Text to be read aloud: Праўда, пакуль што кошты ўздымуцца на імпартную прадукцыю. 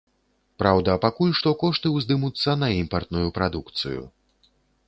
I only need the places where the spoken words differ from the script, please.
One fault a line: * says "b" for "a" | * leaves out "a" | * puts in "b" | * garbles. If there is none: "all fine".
all fine